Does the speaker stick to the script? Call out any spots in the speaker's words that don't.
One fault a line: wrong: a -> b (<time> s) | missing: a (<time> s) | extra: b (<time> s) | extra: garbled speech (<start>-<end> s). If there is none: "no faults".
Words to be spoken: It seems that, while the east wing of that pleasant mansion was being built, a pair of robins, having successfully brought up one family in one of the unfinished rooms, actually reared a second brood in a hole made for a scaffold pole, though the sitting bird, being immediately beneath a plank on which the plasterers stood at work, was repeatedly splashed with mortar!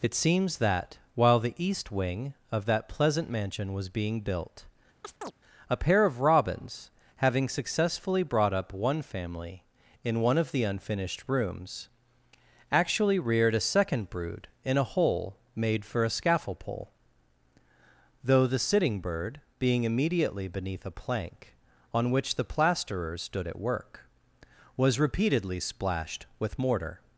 no faults